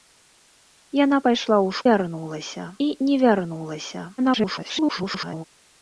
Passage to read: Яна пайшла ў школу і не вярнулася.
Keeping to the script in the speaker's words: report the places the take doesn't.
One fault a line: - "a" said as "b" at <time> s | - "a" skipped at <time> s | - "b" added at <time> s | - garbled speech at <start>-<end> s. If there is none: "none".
- "школу" said as "вярнулася" at 1.9 s
- garbled speech at 4.2-5.4 s